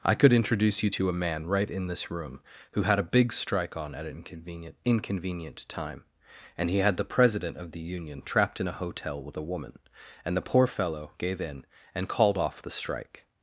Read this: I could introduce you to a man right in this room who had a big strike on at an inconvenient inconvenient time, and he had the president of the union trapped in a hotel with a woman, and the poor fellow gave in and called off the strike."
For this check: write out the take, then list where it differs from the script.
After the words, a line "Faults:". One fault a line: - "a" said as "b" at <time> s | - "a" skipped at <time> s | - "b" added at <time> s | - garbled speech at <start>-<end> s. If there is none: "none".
I could introduce you to a man right in this room who had a big strike on at an inconvenient inconvenient time, and he had the president of the union trapped in a hotel with a woman, and the poor fellow gave in and called off the strike."
Faults:
none